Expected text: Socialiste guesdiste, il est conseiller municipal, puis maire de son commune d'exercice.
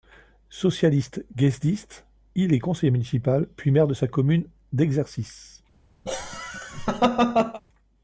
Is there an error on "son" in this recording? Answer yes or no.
yes